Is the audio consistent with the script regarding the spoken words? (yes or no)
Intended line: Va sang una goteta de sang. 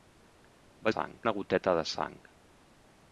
yes